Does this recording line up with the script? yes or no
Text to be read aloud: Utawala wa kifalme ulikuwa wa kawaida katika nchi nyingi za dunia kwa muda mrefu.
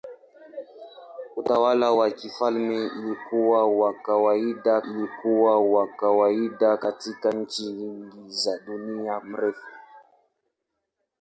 no